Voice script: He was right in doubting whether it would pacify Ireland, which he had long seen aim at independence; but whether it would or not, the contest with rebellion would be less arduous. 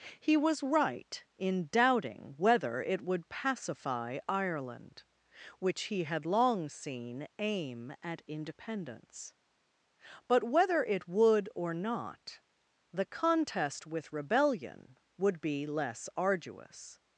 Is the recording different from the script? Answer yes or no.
no